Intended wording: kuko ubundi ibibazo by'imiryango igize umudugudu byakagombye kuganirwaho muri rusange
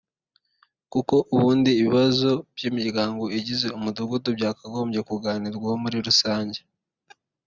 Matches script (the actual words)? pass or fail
pass